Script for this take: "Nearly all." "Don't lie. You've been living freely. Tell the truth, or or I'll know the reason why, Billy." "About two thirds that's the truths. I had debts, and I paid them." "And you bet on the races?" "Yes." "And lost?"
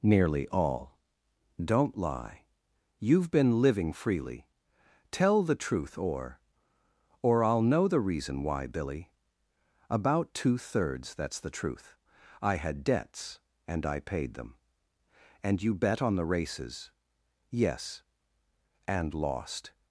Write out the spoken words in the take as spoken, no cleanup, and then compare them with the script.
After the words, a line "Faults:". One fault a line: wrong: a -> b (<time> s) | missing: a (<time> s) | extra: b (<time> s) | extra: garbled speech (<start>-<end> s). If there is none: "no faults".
"Nearly all." "Don't lie. You've been living freely. Tell the truth, or or I'll know the reason why, Billy." "About two thirds that's the truth. I had debts, and I paid them." "And you bet on the races?" "Yes." "And lost?"
Faults:
wrong: truths -> truth (11.5 s)